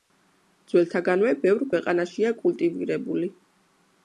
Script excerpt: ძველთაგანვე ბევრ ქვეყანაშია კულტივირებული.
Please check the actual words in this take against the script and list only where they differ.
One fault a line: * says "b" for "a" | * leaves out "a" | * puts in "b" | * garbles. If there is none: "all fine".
all fine